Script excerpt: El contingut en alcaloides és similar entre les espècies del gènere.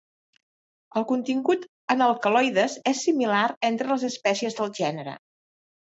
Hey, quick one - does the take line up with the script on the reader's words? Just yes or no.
yes